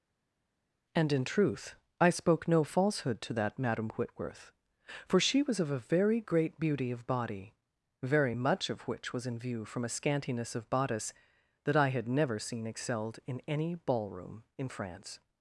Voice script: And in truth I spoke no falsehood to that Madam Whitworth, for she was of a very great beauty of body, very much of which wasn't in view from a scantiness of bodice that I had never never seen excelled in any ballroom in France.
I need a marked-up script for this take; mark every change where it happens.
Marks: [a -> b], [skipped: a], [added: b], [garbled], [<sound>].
And in truth I spoke no falsehood to that Madam Whitworth, for she was of a very great beauty of body, very much of which [wasn't -> was] in view from a scantiness of bodice that I had never [skipped: never] seen excelled in any ballroom in France.